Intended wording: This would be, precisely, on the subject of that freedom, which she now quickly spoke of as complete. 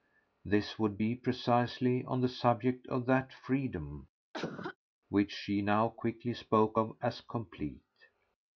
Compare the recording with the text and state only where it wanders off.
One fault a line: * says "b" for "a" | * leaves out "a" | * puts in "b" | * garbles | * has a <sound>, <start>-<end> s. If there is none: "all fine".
* has a cough, 4.3-4.8 s